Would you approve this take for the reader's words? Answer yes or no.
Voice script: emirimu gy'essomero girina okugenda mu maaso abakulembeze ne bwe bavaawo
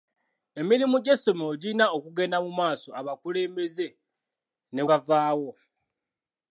no